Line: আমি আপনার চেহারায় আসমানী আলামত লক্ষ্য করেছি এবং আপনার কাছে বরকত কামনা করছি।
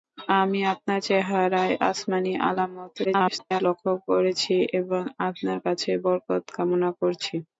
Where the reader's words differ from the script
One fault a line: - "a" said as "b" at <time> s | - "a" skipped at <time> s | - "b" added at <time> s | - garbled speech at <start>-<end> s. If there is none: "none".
- garbled speech at 3.0-3.6 s